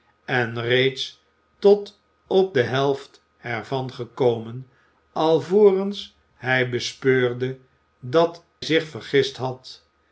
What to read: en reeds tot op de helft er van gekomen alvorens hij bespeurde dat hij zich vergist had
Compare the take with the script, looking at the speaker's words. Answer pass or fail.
fail